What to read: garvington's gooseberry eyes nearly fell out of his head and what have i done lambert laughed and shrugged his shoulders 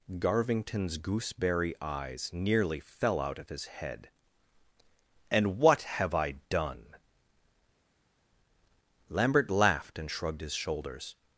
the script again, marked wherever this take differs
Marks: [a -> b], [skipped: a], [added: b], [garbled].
garvington's gooseberry eyes nearly fell out of his head and what have i done lambert laughed and shrugged his shoulders